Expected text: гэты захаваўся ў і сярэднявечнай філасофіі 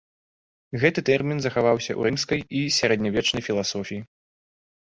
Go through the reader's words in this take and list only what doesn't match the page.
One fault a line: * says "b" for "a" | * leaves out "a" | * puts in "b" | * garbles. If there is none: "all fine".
* puts in "тэрмін"
* puts in "рымскай"